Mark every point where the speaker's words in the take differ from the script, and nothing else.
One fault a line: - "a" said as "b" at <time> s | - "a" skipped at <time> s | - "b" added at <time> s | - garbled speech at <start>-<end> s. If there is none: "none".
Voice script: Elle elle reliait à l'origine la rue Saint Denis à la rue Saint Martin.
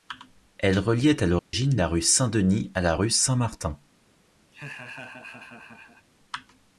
- "elle" skipped at 0.8 s